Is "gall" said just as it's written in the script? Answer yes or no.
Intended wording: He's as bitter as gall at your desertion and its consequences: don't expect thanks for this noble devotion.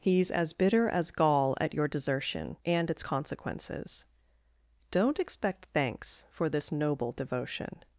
yes